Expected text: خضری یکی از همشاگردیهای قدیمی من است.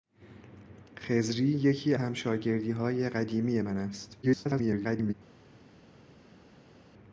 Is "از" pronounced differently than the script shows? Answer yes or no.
yes